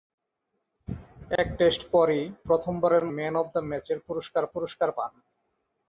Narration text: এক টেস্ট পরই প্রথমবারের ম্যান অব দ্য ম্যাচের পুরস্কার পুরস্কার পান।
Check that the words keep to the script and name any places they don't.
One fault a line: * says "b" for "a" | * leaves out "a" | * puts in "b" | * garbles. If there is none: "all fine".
all fine